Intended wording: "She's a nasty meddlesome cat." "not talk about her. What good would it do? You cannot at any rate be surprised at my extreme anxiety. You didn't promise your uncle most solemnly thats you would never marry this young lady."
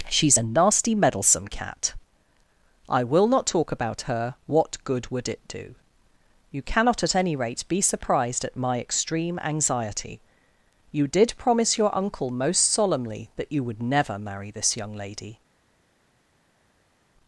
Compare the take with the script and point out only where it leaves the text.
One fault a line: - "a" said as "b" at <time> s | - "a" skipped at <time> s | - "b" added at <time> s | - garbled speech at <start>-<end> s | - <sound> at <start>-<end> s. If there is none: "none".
- "I will" added at 2.9 s
- "didn't" said as "did" at 11.1 s
- "thats" said as "that" at 13.4 s